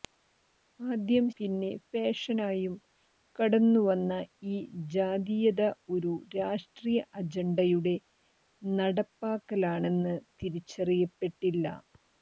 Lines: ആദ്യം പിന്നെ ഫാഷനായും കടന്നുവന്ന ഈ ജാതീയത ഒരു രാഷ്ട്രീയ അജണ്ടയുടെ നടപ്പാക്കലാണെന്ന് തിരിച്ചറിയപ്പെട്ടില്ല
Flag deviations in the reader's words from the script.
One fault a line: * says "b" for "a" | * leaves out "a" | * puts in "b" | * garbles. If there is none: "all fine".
all fine